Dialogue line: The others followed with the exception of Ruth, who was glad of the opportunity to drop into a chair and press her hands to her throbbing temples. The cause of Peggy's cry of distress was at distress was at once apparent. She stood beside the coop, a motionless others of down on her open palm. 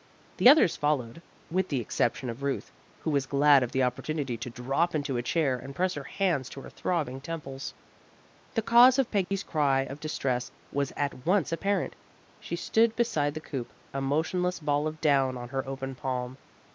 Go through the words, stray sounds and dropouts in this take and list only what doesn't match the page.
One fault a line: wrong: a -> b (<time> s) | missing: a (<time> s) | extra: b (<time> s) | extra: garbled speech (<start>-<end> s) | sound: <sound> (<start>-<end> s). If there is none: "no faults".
sound: dropout (9.2-9.3 s)
missing: distress was at (11.2 s)
wrong: others -> ball (14.6 s)